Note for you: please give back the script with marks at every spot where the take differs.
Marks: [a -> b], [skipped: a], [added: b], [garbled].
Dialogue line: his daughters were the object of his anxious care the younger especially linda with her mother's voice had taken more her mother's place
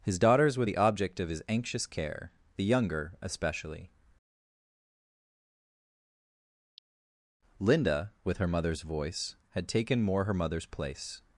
his daughters were the object of his anxious care the younger especially linda with her mother's voice had taken more her mother's place